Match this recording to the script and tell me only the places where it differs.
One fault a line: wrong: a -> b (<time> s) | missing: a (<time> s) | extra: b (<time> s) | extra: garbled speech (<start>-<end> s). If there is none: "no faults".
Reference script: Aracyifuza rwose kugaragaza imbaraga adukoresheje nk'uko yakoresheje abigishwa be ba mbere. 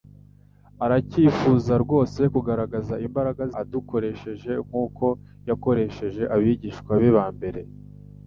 no faults